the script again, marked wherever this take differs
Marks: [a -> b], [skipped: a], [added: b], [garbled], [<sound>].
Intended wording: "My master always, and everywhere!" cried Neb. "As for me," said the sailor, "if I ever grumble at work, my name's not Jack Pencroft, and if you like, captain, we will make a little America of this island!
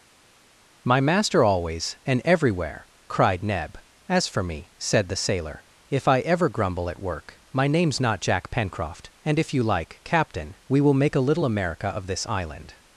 "My master always, and everywhere!" cried Neb. "As for me," said the sailor, "if I ever grumble at work, my name's not Jack Pencroft, and if you like, captain, we will make a little America of this island!